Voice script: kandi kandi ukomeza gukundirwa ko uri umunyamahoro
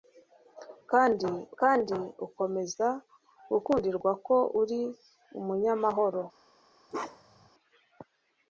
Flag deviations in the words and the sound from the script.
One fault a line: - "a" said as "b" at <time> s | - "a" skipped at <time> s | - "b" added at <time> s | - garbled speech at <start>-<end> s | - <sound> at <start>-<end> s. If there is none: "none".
- bark at 6.9-7.5 s